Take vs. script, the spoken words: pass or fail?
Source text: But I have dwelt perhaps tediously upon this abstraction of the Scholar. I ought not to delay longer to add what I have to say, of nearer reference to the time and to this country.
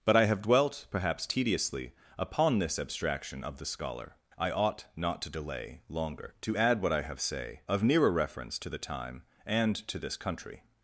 fail